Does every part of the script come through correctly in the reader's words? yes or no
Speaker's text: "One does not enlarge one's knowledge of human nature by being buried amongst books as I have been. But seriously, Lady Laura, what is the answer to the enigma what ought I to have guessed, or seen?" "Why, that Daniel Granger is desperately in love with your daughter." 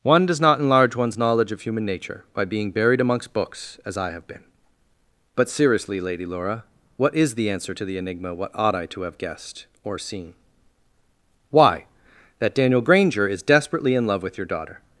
yes